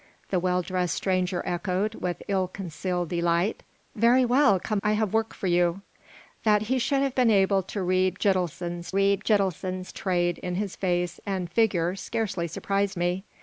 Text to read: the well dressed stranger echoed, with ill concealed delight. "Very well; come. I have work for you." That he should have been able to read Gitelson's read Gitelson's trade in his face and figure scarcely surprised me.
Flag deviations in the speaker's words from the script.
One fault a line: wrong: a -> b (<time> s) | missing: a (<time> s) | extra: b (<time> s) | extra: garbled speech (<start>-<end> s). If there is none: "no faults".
no faults